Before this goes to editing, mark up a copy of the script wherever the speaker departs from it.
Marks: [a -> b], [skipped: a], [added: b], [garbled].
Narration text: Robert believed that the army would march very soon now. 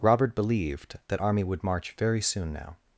Robert believed that [skipped: the] army would march very soon now.